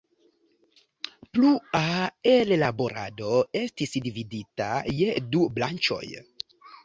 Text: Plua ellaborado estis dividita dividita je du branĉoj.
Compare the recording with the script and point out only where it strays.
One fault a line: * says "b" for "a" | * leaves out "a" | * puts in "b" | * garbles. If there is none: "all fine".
* leaves out "dividita"